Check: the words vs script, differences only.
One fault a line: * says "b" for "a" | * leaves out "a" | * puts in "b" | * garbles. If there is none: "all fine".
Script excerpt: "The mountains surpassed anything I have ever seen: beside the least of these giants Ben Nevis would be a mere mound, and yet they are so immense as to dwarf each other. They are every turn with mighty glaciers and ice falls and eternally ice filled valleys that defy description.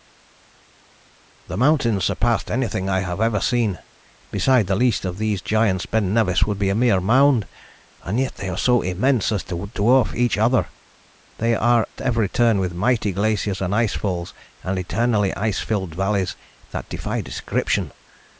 all fine